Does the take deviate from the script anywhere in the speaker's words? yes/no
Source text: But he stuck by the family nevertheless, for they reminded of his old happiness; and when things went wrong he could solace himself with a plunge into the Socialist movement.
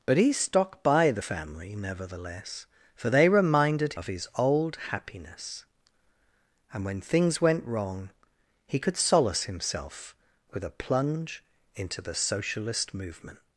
no